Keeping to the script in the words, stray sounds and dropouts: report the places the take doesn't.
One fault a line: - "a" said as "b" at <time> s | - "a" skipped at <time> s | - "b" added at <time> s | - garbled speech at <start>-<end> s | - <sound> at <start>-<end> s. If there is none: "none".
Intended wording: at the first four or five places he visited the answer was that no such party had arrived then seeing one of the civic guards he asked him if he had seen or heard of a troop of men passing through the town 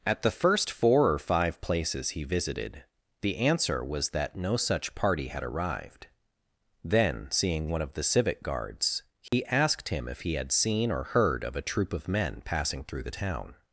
- dropout at 9.3-9.3 s